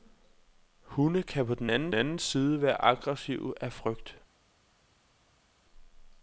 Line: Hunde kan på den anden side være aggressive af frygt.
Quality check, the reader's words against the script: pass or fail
fail